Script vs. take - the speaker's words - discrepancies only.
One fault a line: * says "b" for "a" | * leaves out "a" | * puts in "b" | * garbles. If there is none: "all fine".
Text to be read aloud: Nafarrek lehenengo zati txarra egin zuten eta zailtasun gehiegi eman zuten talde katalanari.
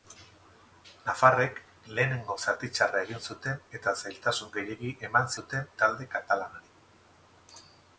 all fine